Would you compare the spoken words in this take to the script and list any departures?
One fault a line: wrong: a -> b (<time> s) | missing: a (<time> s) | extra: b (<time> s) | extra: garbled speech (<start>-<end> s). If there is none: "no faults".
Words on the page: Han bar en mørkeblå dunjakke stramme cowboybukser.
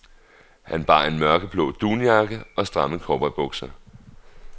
extra: og (2.5 s)